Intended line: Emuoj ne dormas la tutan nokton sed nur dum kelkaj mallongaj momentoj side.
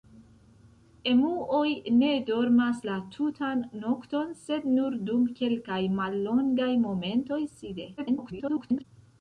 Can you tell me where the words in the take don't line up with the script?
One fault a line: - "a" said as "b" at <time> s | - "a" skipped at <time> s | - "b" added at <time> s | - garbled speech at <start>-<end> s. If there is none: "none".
- garbled speech at 8.0-8.8 s